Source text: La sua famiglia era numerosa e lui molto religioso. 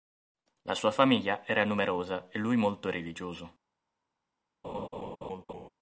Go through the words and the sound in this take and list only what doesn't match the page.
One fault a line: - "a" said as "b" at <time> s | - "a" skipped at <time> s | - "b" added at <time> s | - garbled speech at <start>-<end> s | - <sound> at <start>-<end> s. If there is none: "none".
- laugh at 4.6-5.7 s